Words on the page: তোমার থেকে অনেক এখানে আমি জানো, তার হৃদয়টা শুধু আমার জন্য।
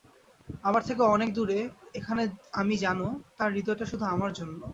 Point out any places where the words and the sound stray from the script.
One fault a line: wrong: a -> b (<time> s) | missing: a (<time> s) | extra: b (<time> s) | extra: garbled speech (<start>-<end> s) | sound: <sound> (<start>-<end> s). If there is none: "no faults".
wrong: তোমার -> আমার (0.6 s)
extra: দূরে (1.3 s)